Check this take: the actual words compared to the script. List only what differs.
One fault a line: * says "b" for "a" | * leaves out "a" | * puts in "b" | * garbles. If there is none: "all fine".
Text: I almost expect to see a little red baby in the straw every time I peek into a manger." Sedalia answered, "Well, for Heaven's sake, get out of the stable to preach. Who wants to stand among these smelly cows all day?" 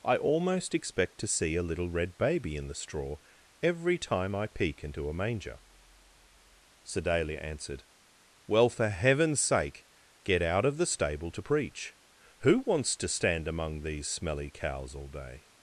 all fine